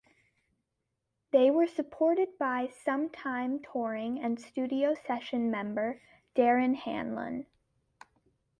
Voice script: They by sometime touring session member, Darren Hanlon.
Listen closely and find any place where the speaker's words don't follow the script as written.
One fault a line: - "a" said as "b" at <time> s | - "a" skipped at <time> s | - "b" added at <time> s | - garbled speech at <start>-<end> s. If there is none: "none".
- "were supported" added at 1.5 s
- "and studio" added at 4.2 s